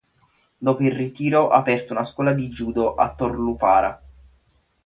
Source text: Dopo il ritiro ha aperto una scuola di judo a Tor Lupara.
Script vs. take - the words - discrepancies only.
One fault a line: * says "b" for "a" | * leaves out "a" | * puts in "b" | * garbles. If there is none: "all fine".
all fine